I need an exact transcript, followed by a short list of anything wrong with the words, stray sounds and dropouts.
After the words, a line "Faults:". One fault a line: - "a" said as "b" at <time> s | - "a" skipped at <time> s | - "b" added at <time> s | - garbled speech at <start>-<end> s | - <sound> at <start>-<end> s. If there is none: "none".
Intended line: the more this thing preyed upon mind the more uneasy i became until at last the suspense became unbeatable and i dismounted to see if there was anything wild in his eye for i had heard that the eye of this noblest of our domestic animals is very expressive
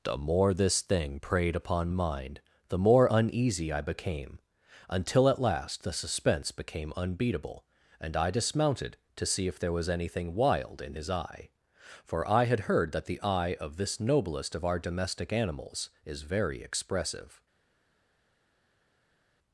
the more this thing preyed upon mind the more uneasy i became until at last the suspense became unbeatable and i dismounted to see if there was anything wild in his eye for i had heard that the eye of this noblest of our domestic animals is very expressive
Faults:
none